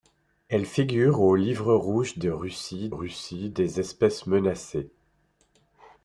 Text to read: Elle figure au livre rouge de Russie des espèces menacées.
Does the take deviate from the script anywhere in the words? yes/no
yes